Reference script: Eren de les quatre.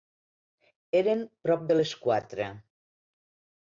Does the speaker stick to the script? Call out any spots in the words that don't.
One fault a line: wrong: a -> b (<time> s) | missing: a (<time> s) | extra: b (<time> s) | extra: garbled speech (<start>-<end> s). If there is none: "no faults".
extra: prop (1.4 s)